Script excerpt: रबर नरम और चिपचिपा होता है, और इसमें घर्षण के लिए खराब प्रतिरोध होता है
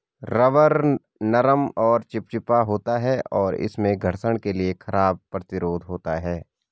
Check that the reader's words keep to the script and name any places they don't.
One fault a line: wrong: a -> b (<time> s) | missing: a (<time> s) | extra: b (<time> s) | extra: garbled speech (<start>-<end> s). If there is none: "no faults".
no faults